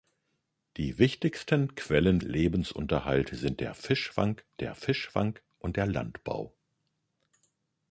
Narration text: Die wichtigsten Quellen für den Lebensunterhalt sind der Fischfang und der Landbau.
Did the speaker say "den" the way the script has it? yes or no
no